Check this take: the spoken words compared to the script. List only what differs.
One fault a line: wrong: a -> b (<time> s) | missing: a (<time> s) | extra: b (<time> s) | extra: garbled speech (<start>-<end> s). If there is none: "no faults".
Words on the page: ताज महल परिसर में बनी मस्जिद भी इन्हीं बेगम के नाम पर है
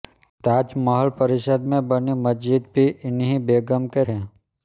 missing: नाम पर (4.0 s)